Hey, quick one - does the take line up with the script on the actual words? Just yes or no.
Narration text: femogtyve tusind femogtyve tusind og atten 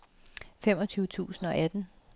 no